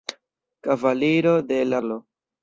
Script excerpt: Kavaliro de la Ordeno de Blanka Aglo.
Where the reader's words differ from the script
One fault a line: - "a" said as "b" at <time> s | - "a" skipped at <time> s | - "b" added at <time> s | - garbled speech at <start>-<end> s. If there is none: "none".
- "Ordeno de Blanka" skipped at 1.8 s